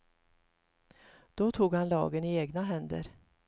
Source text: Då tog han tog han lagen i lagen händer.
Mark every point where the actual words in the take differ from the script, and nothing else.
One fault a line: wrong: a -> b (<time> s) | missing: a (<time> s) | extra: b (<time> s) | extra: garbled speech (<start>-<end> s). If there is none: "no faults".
missing: tog han (1.9 s)
wrong: lagen -> egna (2.4 s)